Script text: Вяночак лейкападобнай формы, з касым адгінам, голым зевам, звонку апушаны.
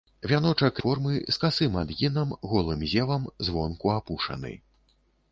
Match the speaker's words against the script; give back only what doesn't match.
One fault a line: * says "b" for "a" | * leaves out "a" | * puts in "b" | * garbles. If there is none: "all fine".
* leaves out "лейкападобнай"